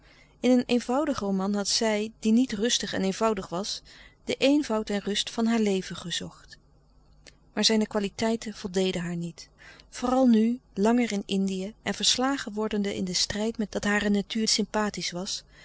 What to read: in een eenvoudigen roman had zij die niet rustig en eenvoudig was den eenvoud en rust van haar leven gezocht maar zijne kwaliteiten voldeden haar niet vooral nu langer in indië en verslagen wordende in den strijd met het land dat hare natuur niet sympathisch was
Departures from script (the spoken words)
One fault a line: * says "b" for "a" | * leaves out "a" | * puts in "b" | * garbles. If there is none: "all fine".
* leaves out "het land"
* leaves out "niet"